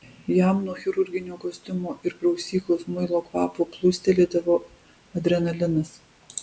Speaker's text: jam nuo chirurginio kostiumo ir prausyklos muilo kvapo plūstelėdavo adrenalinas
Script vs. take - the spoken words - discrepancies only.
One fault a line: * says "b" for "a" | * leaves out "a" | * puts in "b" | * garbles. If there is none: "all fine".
all fine